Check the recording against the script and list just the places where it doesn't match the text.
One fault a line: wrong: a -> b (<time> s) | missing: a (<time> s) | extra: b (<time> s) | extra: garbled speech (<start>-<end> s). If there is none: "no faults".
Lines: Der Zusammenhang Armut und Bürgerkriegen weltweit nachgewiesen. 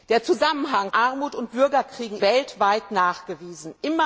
no faults